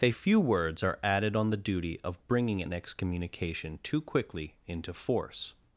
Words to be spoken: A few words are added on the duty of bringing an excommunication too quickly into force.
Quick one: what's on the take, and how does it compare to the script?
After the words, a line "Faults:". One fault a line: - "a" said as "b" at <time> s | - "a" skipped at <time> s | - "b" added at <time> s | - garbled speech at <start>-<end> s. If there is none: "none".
A few words are added on the duty of bringing an excommunication too quickly into force.
Faults:
none